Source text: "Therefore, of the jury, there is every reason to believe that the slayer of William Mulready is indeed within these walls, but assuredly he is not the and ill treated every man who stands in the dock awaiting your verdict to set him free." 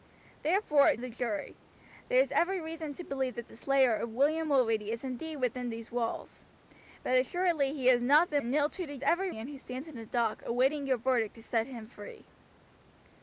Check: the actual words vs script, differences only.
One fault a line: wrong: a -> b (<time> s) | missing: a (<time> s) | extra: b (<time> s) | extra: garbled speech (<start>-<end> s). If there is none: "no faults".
no faults